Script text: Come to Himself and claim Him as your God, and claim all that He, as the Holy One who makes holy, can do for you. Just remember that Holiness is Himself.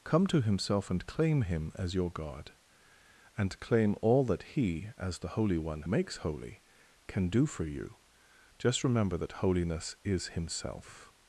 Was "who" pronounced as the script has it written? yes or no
no